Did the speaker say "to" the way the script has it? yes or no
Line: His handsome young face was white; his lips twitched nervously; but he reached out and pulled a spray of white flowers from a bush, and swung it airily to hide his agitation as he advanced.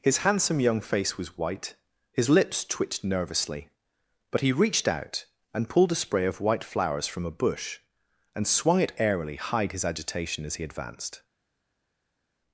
no